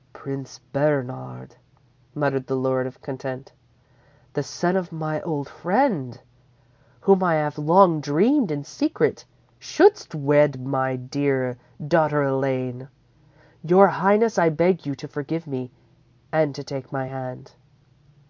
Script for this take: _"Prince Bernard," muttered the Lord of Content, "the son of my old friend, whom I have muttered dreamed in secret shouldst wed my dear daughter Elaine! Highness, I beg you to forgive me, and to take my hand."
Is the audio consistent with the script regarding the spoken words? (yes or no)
no